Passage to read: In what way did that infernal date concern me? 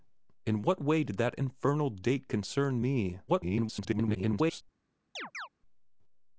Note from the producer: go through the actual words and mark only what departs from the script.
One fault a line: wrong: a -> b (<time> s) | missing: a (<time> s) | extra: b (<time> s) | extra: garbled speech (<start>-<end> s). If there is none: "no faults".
extra: garbled speech (3.3-4.6 s)